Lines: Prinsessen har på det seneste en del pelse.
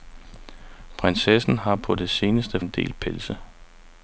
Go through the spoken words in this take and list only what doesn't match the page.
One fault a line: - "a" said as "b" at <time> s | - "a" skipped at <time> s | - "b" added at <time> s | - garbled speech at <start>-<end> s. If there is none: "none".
none